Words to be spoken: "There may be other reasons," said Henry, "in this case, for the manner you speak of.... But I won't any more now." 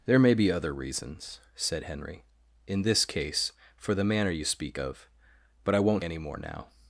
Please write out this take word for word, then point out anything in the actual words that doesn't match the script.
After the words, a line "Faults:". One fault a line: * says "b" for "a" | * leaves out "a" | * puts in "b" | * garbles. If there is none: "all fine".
"There may be other reasons," said Henry, "in this case, for the manner you speak of.... But I won't any more now."
Faults:
all fine